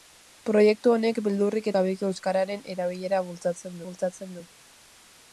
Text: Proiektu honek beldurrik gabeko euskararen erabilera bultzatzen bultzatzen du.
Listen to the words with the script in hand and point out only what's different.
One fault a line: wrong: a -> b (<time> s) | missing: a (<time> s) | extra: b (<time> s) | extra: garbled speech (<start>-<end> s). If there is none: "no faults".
no faults